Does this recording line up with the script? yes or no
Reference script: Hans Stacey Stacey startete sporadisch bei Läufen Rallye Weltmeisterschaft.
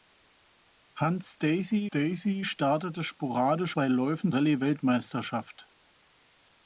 yes